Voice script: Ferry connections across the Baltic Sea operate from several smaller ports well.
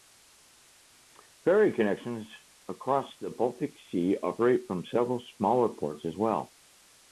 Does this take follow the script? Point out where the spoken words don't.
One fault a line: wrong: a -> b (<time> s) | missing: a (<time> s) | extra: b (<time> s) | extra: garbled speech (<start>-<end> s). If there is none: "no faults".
extra: as (6.1 s)